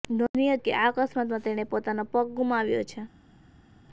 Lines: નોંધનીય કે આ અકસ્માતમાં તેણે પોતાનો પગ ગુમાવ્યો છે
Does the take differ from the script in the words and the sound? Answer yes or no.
no